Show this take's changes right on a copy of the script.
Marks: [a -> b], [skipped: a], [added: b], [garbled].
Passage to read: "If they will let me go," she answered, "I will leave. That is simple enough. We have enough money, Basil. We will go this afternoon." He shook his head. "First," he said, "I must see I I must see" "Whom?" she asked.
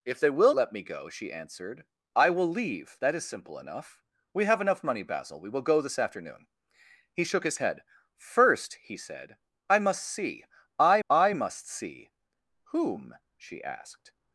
"If they will let me go," she answered, "I will leave. That is simple enough. We have enough money, Basil. We will go this afternoon." He shook his head. "First," he said, "I must see I I must see" "Whom?" she asked.